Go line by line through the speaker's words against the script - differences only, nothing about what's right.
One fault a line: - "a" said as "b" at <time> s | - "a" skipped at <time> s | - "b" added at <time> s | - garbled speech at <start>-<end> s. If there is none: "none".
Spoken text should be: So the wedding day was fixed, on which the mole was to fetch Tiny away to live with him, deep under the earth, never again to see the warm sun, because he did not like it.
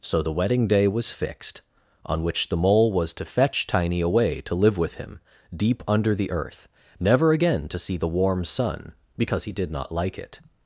none